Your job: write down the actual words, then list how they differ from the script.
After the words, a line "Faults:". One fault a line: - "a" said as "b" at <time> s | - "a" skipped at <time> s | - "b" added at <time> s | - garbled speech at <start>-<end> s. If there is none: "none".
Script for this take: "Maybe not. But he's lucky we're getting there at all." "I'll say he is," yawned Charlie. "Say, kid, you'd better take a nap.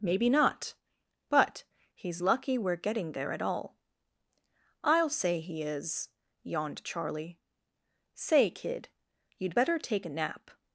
"Maybe not. But he's lucky we're getting there at all." "I'll say he is," yawned Charlie. "Say, kid, you'd better take a nap.
Faults:
none